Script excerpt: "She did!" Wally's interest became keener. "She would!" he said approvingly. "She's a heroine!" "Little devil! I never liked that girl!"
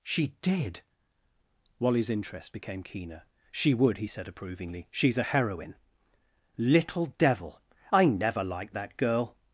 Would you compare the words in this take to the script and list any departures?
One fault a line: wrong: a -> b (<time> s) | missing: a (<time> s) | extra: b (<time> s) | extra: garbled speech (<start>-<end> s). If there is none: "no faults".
no faults